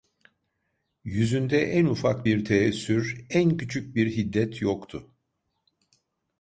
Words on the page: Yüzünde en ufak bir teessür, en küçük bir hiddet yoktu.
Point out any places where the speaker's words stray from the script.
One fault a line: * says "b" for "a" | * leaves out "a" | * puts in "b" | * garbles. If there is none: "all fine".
all fine